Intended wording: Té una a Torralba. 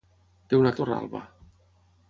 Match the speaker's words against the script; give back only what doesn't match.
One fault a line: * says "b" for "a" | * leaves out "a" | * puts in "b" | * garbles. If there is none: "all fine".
all fine